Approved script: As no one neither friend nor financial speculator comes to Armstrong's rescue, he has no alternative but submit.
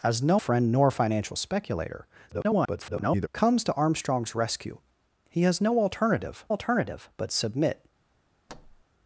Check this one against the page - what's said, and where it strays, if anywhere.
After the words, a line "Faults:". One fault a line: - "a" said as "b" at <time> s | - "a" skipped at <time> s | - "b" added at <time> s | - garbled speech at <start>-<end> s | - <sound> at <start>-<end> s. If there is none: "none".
As no friend nor financial speculator [garbled] comes to Armstrong's rescue, he has no alternative alternative but submit.
Faults:
- "one neither" skipped at 0.4 s
- garbled speech at 2.3-3.3 s
- "alternative" added at 6.5 s
- thud at 8.5-8.8 s